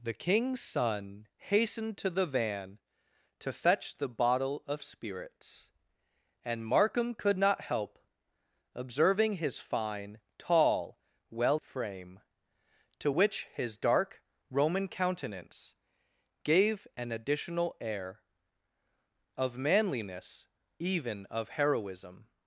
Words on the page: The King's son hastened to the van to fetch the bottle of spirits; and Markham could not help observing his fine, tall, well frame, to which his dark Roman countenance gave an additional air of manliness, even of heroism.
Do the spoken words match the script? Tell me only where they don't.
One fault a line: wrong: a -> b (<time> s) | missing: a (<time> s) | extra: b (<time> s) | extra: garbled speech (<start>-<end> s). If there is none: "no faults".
no faults